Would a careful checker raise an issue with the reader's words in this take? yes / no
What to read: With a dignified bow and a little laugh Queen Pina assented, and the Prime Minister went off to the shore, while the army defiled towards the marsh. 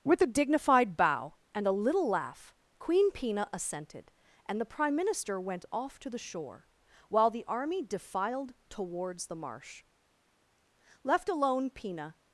yes